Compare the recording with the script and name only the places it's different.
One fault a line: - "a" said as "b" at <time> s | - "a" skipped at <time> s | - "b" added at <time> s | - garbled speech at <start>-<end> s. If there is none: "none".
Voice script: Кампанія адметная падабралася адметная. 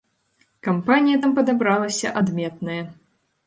- "адметная" said as "там" at 1.2 s